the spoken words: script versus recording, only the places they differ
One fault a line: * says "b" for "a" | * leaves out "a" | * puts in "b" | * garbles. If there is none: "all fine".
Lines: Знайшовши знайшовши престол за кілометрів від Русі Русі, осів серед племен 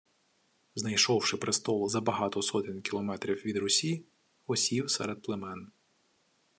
* leaves out "знайшовши"
* puts in "багато сотень"
* leaves out "Русі"